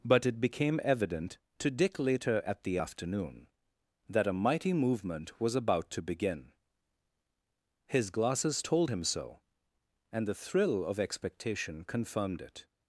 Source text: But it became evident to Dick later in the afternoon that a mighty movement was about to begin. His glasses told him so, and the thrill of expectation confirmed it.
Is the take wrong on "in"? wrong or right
wrong